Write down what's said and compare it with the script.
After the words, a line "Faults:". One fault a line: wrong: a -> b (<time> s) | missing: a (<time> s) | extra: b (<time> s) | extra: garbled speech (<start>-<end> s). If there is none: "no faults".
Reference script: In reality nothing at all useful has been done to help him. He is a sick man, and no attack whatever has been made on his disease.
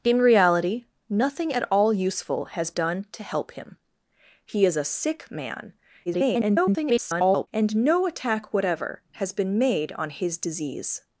In reality nothing at all useful has done to help him. He is a sick man, [garbled] and no attack whatever has been made on his disease.
Faults:
missing: been (2.7 s)
extra: garbled speech (6.1-7.5 s)